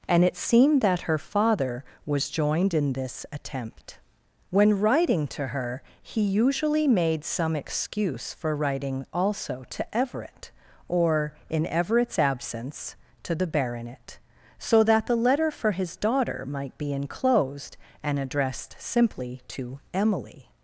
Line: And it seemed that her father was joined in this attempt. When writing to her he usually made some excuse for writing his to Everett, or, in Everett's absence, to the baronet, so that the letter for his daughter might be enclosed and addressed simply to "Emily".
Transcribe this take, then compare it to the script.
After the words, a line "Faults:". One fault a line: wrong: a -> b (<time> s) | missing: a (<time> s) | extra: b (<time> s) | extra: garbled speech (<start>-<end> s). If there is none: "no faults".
And it seemed that her father was joined in this attempt. When writing to her he usually made some excuse for writing also to Everett, or, in Everett's absence, to the baronet, so that the letter for his daughter might be enclosed and addressed simply to "Emily".
Faults:
wrong: his -> also (9.1 s)